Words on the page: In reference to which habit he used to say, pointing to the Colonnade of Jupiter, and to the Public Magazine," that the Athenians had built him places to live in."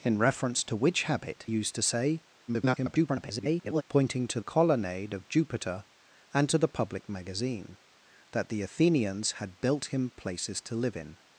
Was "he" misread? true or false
true